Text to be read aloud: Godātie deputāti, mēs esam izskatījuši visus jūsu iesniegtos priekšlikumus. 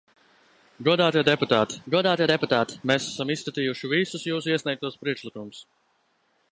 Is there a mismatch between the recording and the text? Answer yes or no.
yes